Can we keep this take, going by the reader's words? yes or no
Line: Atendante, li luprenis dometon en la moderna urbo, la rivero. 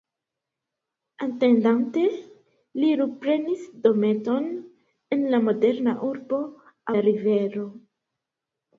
yes